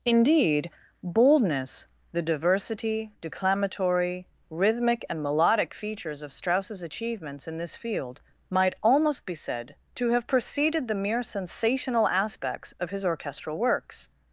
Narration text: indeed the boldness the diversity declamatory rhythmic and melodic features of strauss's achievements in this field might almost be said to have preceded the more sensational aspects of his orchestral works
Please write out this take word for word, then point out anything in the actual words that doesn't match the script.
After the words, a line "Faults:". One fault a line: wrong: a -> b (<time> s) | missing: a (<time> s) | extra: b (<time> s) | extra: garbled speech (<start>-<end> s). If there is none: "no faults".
indeed boldness the diversity declamatory rhythmic and melodic features of strauss's achievements in this field might almost be said to have preceded the mere sensational aspects of his orchestral works
Faults:
missing: the (0.7 s)
wrong: more -> mere (10.9 s)